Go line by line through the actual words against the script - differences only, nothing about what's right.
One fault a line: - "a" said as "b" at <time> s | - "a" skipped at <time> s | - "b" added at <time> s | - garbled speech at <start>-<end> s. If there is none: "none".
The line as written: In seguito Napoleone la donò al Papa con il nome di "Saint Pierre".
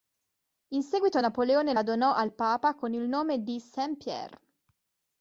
none